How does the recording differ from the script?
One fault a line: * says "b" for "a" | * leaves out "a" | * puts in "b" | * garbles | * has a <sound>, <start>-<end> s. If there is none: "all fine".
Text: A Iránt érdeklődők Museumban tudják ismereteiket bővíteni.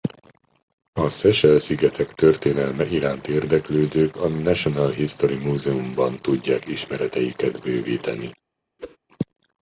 * puts in "Seychelle szigetek történelme"
* puts in "a National History"
* has a whoosh, 8.8-9.0 s